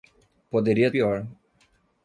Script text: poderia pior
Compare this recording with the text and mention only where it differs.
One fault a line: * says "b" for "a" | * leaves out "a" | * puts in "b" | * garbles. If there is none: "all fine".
all fine